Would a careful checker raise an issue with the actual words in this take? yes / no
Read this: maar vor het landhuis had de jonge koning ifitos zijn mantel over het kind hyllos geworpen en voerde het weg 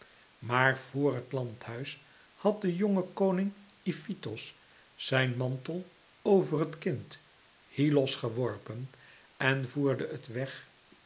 no